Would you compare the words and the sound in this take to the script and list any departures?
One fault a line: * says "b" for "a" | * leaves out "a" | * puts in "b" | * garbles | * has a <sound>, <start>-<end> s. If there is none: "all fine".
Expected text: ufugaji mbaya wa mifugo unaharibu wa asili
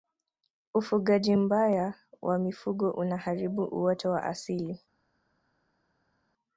* puts in "uoto"